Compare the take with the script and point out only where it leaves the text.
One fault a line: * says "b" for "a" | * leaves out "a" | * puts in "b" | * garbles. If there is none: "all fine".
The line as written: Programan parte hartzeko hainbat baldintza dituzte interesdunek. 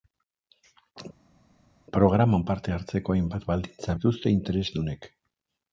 all fine